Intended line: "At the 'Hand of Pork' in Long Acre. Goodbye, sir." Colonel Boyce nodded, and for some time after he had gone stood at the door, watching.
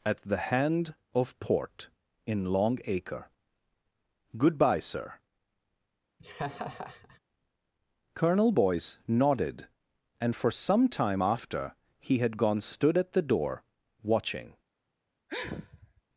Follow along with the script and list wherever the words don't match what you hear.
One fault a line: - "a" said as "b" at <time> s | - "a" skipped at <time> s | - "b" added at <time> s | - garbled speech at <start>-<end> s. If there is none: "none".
- "Pork" said as "Port" at 1.4 s